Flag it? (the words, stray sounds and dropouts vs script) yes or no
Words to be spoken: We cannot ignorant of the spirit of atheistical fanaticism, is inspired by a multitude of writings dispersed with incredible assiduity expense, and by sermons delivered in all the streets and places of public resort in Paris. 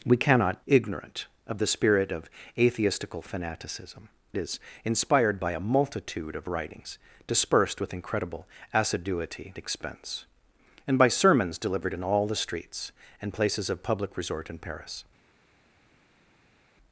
no